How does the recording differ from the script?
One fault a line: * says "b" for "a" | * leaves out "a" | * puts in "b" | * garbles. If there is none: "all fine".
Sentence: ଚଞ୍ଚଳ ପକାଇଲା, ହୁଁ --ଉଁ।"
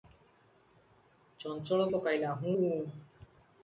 all fine